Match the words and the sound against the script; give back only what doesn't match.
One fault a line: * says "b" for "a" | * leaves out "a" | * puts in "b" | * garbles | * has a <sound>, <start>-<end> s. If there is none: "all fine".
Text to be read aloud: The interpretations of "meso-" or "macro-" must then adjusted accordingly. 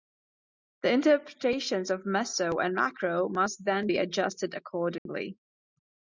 * says "and" for "or"
* puts in "be"
* has a dropout, 5.0-5.1 s